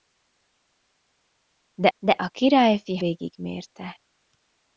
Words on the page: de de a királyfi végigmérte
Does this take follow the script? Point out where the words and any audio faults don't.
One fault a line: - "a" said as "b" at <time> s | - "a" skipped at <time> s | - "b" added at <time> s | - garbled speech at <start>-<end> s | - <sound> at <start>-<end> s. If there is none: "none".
none